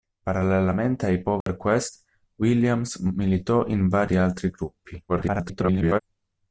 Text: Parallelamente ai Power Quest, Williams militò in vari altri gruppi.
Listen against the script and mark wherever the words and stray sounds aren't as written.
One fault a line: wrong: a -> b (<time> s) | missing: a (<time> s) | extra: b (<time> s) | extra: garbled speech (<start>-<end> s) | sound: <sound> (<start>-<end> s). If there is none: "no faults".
sound: dropout (1.4-1.5 s)
extra: garbled speech (5.1-6.0 s)